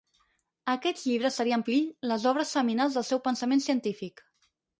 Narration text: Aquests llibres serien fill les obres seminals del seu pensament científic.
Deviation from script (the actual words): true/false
false